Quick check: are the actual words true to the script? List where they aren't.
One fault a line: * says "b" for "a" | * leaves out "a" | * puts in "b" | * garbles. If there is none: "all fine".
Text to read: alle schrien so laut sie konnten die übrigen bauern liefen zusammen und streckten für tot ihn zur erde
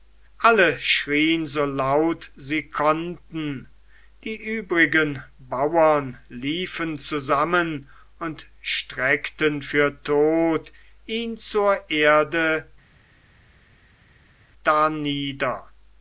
all fine